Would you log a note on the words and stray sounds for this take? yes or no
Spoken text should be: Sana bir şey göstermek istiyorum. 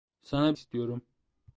yes